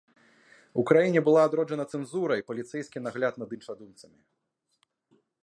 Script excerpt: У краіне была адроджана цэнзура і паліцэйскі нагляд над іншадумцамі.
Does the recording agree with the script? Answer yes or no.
yes